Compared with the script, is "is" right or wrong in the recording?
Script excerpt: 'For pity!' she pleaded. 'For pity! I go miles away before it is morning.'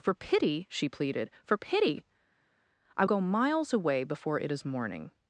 right